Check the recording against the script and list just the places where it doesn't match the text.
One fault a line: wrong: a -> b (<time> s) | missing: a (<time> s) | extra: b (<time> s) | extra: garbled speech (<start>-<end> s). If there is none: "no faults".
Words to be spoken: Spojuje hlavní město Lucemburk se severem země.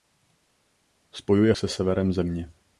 missing: hlavní město Lucemburk (1.5 s)